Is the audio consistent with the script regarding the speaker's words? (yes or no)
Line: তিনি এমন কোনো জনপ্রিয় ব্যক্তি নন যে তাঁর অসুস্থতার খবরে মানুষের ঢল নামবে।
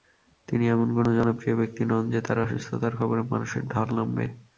yes